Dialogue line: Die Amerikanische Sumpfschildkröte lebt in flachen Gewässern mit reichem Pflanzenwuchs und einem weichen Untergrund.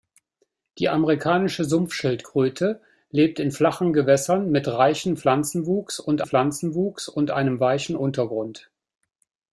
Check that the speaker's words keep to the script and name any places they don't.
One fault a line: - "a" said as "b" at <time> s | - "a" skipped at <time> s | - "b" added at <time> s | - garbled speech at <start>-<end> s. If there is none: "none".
- "Pflanzenwuchs und" added at 6.2 s